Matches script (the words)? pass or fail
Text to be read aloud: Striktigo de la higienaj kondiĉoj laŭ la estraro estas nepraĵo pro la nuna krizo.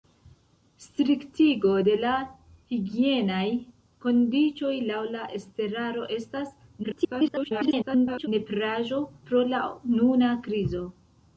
fail